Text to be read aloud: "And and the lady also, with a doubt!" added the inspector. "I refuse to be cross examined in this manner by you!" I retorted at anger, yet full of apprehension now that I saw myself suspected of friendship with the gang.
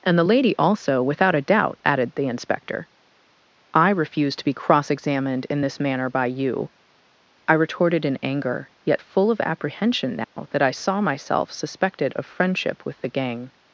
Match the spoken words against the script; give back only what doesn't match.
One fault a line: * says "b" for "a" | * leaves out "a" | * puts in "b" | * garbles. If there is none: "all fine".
* leaves out "and"
* says "without" for "with"
* says "in" for "at"